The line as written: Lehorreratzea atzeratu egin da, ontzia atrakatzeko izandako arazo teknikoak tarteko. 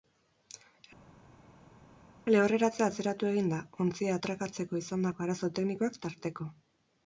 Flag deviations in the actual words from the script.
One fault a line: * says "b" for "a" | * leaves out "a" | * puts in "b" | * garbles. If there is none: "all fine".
all fine